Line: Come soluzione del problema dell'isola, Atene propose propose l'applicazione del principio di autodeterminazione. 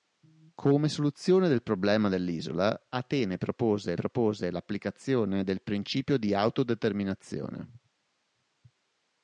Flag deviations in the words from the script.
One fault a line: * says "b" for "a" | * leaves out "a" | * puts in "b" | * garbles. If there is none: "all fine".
all fine